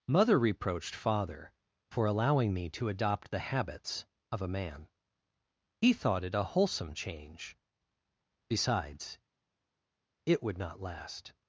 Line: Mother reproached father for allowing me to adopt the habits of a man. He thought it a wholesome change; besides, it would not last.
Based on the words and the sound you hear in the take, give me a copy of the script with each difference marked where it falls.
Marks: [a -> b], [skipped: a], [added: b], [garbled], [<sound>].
Mother reproached father for allowing me to adopt the habits of a man. He thought it a wholesome change; besides, it would not last.